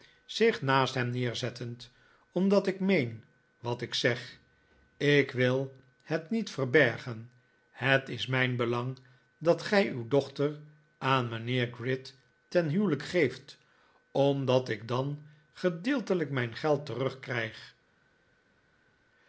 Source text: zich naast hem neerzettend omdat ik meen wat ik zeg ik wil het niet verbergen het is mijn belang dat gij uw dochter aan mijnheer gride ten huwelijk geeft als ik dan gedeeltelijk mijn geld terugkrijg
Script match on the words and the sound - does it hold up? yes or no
no